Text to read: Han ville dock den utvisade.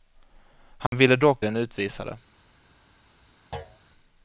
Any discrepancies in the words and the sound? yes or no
yes